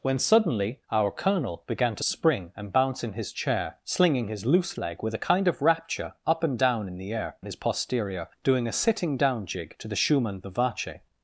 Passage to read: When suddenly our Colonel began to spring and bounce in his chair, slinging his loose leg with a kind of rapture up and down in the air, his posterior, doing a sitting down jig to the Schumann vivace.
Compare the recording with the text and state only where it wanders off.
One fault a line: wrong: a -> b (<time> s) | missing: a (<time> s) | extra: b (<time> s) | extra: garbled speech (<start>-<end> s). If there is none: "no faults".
no faults